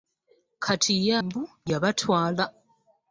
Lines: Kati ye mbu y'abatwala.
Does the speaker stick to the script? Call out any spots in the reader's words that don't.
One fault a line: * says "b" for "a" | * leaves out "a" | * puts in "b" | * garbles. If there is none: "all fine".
all fine